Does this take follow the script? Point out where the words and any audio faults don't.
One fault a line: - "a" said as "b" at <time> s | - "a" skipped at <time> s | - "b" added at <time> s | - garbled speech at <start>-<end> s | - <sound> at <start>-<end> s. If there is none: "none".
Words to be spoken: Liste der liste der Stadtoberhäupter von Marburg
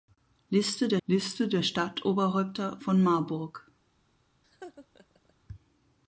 - laugh at 4.4-5.3 s